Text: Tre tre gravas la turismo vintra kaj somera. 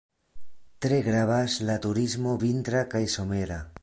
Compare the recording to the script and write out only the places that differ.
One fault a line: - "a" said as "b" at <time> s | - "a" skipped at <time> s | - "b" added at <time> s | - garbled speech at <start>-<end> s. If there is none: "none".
- "tre" skipped at 1.0 s